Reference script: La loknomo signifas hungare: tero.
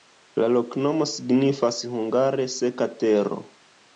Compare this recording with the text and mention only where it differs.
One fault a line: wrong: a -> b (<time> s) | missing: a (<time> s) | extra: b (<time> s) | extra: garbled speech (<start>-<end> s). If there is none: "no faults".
extra: seka (2.6 s)